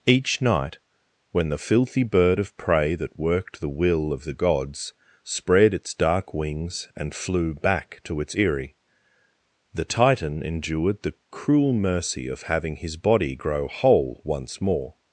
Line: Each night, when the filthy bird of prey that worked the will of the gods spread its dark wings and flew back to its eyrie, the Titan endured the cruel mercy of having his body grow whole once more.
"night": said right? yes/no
yes